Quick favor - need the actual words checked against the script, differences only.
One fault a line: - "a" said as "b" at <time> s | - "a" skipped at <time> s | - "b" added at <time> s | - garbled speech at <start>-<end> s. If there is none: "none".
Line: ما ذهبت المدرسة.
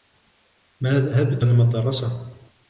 none